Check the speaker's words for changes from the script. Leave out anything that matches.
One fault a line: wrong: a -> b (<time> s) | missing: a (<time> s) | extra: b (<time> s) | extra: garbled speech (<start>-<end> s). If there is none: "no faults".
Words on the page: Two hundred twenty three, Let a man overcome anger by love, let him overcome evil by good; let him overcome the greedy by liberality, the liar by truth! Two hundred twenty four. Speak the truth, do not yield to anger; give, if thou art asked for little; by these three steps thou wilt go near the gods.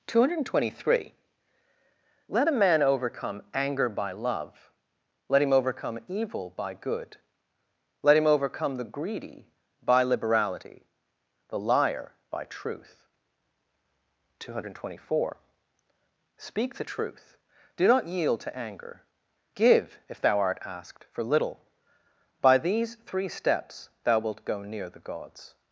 no faults